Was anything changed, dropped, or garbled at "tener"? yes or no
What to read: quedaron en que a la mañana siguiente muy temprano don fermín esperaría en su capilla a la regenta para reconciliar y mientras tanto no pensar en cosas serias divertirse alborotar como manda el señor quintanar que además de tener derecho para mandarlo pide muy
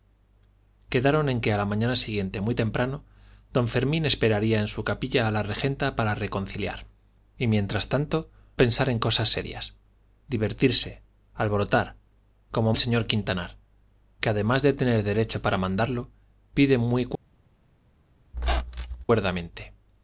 no